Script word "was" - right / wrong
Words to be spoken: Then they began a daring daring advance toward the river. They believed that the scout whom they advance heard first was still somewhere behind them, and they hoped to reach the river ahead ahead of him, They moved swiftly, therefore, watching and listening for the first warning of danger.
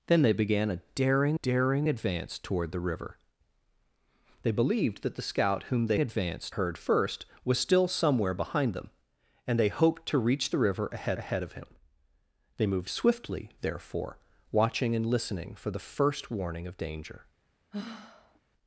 right